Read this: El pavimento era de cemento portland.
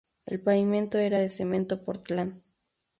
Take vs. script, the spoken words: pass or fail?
pass